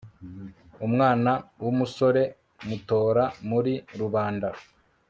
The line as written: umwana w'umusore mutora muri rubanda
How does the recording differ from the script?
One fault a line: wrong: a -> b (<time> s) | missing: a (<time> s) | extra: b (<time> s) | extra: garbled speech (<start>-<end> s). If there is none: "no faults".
no faults